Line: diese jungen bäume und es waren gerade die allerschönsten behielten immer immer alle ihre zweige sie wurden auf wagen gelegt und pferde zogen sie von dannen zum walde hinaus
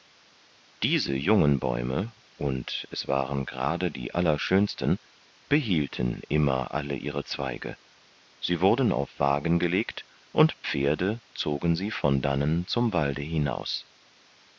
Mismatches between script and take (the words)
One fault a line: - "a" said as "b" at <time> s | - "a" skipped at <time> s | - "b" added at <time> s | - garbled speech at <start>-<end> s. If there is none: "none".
- "immer" skipped at 6.7 s